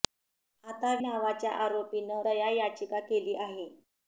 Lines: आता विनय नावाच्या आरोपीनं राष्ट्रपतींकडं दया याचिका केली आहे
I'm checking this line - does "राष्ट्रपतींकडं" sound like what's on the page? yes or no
no